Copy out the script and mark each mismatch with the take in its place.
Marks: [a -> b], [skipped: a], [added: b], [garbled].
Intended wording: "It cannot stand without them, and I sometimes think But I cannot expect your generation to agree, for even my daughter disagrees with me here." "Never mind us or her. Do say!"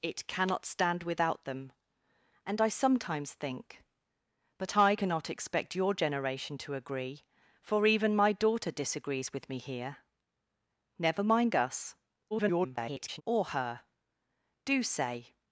"It cannot stand without them, and I sometimes think But I cannot expect your generation to agree, for even my daughter disagrees with me here." "Never mind us [garbled] or her. Do say!"